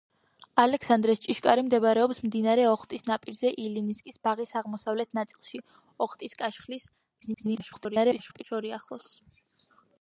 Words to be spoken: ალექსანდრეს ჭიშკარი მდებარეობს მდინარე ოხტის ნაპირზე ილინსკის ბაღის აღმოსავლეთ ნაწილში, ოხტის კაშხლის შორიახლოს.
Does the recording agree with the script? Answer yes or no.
no